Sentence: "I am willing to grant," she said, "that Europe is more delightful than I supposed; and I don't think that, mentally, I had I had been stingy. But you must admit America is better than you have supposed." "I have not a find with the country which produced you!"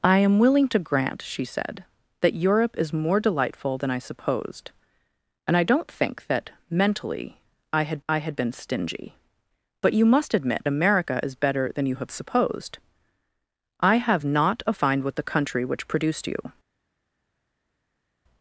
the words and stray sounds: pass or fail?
pass